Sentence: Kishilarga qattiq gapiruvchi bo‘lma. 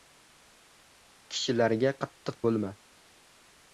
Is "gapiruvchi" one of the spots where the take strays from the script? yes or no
yes